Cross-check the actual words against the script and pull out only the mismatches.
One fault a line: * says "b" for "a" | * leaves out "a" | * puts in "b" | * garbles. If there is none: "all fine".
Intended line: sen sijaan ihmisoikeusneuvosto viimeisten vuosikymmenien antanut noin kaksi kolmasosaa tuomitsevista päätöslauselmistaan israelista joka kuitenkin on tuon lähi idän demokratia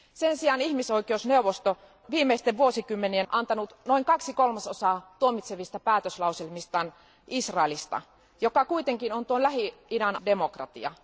all fine